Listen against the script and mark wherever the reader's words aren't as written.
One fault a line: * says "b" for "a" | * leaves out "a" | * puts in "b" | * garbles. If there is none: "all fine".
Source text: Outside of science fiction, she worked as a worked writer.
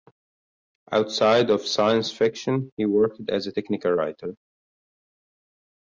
* says "he" for "she"
* says "technical" for "worked"